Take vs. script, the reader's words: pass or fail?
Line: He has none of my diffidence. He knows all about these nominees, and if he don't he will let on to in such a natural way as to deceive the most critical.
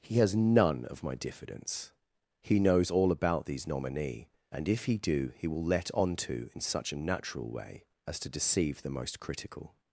fail